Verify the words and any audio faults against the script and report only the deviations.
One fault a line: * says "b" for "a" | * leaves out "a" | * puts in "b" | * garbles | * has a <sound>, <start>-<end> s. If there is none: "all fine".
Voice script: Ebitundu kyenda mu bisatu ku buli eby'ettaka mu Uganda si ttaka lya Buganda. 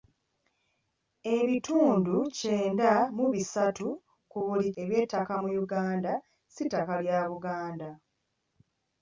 all fine